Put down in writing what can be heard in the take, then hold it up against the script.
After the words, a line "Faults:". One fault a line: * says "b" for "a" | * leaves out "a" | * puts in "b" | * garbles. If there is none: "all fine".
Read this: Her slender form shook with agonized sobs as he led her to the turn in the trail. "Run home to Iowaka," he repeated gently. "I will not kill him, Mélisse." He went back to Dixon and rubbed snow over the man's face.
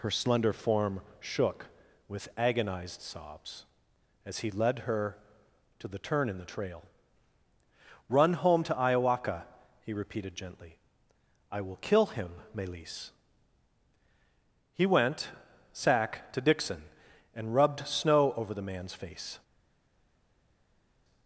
Her slender form shook with agonized sobs as he led her to the turn in the trail. "Run home to Iowaka," he repeated gently. "I will kill him, Mélisse." He went sack to Dixon and rubbed snow over the man's face.
Faults:
* leaves out "not"
* says "sack" for "back"